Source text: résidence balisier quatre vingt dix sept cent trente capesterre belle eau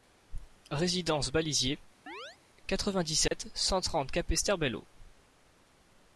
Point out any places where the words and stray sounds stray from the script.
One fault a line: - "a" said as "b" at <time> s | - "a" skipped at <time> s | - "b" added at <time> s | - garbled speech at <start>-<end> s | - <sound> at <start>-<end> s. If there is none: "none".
- chirp at 2.1-2.4 s
- dropout at 3.3-3.3 s